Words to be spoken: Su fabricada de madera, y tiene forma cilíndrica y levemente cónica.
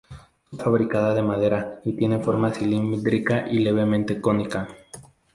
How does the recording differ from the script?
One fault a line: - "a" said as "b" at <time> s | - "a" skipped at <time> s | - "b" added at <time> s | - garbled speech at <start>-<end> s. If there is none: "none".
none